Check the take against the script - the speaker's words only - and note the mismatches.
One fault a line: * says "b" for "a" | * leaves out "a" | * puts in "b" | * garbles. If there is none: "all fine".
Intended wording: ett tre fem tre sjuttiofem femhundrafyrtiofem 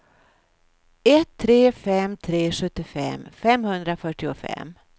all fine